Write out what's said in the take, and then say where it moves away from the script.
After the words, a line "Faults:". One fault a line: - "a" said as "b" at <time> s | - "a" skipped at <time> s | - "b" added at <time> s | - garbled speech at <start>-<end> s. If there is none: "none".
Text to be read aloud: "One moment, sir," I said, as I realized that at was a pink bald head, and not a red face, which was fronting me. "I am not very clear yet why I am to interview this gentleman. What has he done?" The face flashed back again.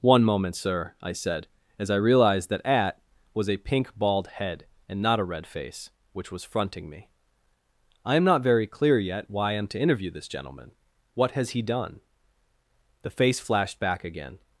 "One moment, sir," I said, as I realized that at was a pink bald head, and not a red face, which was fronting me. "I am not very clear yet why I am to interview this gentleman. What has he done?" The face flashed back again.
Faults:
none